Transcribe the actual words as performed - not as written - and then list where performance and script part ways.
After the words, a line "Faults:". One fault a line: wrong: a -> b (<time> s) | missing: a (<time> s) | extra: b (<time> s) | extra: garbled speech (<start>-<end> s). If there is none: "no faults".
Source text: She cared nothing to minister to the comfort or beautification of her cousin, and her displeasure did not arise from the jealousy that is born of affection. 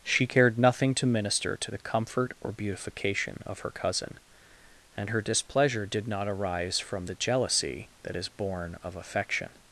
She cared nothing to minister to the comfort or beautification of her cousin, and her displeasure did not arise from the jealousy that is born of affection.
Faults:
no faults